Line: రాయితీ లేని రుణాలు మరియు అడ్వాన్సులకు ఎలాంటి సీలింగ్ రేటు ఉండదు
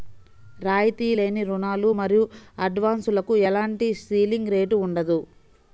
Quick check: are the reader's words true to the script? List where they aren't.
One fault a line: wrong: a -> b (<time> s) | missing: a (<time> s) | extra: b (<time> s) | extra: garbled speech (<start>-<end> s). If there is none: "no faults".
no faults